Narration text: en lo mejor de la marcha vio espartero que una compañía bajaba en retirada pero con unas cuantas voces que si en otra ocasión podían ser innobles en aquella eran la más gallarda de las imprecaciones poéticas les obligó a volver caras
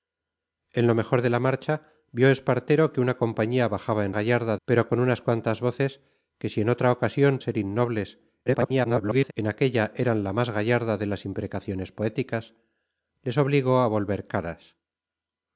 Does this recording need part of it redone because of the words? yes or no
yes